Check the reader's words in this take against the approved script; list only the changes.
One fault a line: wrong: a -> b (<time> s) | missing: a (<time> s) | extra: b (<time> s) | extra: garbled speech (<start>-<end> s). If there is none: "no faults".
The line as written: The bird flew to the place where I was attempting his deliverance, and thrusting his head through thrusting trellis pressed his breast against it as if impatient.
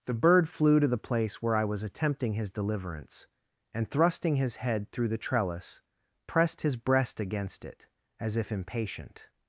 wrong: thrusting -> the (5.1 s)